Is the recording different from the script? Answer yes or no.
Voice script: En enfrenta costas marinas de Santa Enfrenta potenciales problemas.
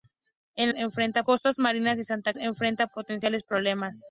no